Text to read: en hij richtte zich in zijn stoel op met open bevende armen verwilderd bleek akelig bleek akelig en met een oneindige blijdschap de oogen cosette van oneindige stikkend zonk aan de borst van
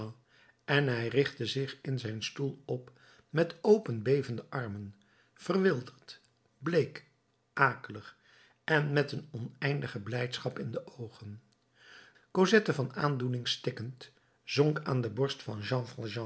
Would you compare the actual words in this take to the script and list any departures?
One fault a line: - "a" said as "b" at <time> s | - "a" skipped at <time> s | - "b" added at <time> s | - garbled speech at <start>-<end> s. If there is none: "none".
- "bleek akelig" skipped at 8.2 s
- "in" added at 10.6 s
- "oneindige" said as "aandoening" at 12.9 s